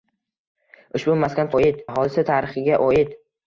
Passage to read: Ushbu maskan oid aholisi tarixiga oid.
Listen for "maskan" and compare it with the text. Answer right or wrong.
right